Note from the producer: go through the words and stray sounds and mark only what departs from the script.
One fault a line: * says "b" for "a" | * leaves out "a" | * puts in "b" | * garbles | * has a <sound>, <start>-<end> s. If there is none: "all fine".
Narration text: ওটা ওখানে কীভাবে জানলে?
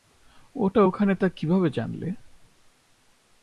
* puts in "তা"